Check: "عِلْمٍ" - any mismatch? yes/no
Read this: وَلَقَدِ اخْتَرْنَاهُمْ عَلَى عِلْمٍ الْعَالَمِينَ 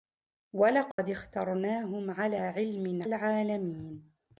no